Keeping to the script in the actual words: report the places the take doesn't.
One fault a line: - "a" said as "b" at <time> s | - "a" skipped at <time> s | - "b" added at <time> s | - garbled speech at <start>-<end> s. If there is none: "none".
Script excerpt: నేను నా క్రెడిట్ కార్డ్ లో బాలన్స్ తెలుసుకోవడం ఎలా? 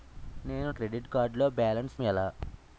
- "నా" skipped at 0.7 s
- "తెలుసుకోవడం" skipped at 2.0 s